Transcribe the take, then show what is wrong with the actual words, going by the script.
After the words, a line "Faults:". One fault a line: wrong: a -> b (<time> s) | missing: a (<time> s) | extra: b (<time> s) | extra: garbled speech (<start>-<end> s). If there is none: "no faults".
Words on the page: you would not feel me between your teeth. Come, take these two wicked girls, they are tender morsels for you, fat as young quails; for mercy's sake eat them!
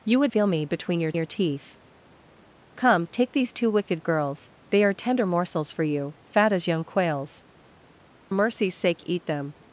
you would feel me between your your teeth. Come, take these two wicked girls, they are tender morsels for you, fat as young quails; mercy's sake eat them!
Faults:
missing: not (0.3 s)
extra: your (1.1 s)
missing: for (7.4 s)